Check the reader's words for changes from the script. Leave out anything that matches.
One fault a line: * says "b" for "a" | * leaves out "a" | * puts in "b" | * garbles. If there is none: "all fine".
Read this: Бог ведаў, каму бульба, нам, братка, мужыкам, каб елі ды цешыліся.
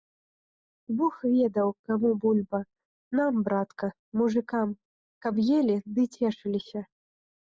all fine